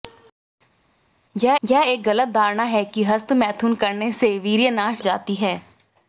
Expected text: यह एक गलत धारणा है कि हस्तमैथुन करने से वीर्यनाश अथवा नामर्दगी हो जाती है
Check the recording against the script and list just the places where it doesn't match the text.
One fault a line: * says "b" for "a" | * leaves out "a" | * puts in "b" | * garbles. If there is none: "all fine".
* puts in "यह"
* leaves out "अथवा नामर्दगी हो"